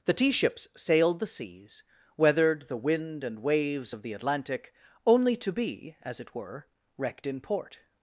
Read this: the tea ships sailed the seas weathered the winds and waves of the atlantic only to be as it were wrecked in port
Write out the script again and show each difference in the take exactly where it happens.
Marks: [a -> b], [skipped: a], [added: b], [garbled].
the tea ships sailed the seas weathered the [winds -> wind] and waves of the atlantic only to be as it were wrecked in port